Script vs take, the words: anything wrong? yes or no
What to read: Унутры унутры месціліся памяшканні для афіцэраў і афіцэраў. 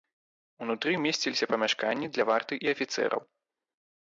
yes